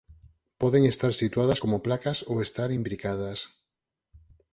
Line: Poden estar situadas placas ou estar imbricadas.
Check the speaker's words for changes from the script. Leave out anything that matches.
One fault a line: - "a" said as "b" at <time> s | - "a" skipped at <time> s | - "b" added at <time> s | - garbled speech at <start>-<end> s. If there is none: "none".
- "como" added at 1.6 s